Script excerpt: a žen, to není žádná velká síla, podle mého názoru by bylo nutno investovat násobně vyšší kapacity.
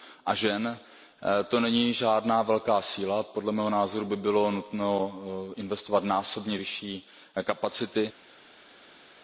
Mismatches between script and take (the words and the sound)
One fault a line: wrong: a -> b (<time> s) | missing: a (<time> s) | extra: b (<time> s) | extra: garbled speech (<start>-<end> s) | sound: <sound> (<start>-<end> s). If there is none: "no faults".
no faults